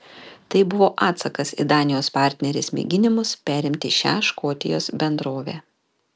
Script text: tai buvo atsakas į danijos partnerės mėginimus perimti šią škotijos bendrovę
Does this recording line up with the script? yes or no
yes